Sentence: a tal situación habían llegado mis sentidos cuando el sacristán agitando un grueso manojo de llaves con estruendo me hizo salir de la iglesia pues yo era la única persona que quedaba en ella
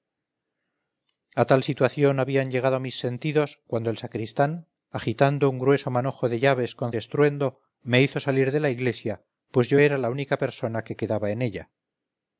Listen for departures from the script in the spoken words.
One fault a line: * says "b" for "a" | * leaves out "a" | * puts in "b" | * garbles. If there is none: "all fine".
all fine